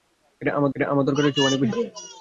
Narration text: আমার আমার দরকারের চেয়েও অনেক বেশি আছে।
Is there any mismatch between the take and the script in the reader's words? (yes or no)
no